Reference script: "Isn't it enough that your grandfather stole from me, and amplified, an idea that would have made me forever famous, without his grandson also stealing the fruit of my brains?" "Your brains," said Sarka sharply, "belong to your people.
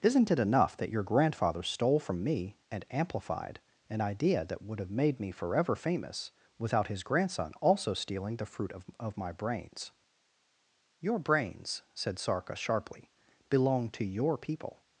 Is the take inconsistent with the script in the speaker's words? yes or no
yes